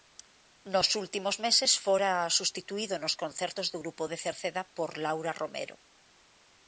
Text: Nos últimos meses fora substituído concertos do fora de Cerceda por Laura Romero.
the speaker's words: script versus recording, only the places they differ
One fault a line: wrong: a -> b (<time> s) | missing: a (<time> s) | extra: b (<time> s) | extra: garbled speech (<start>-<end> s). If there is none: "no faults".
extra: nos (3.0 s)
wrong: fora -> grupo (3.8 s)